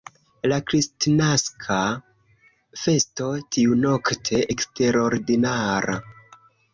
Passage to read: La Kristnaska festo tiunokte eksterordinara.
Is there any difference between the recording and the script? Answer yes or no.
no